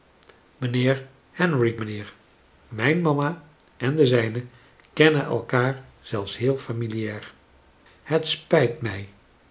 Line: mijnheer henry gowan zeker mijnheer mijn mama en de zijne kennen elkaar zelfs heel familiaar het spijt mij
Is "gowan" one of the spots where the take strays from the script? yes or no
yes